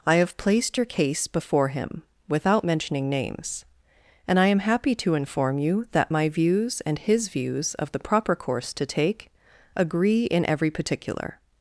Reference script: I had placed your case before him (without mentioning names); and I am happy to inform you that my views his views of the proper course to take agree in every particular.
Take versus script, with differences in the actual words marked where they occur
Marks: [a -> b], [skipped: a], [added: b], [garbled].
I [had -> have] placed your case before him (without mentioning names); and I am happy to inform you that my views [added: and] his views of the proper course to take agree in every particular.